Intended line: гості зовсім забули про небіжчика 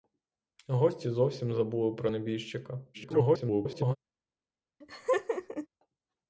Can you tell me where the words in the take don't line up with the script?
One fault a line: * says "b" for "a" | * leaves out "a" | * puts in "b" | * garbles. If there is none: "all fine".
* garbles